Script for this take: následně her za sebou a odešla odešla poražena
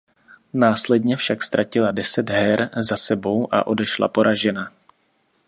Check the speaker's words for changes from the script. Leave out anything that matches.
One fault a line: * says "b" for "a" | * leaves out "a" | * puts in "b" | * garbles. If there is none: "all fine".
* puts in "však ztratila deset"
* leaves out "odešla"